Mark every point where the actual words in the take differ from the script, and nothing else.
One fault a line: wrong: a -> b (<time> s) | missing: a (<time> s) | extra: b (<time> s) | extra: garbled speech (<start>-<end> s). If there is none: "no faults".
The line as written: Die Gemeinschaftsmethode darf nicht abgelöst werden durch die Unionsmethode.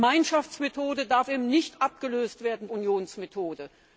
missing: durch die (2.7 s)